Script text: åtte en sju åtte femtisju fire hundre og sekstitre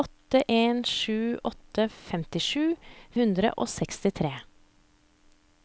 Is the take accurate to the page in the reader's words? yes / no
no